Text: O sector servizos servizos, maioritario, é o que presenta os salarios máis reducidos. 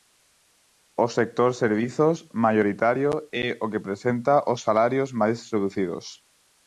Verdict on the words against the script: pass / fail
fail